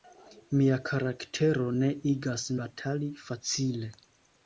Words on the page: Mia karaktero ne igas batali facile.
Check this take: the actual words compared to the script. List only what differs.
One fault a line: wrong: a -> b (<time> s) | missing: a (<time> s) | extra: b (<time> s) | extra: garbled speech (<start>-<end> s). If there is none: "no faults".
no faults